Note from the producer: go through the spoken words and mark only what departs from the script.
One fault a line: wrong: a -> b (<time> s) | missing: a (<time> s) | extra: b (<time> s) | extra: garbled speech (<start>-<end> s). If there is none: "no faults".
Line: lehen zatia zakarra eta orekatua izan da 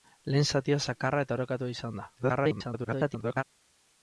extra: garbled speech (2.2-3.4 s)